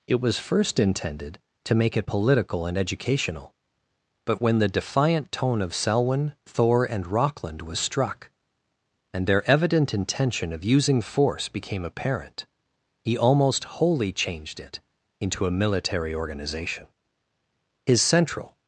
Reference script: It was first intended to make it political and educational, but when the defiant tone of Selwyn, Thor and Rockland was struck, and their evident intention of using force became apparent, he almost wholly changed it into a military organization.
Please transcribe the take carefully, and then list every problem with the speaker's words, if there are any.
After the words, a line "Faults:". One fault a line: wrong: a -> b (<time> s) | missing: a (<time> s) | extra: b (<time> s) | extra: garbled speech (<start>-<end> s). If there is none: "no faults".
It was first intended to make it political and educational, but when the defiant tone of Selwyn, Thor and Rockland was struck, and their evident intention of using force became apparent, he almost wholly changed it into a military organization. His central
Faults:
extra: His central (17.8 s)